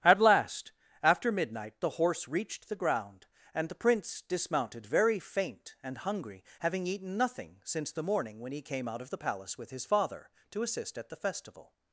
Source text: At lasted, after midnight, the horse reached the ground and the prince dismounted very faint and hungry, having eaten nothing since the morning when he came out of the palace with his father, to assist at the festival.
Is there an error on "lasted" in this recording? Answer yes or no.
yes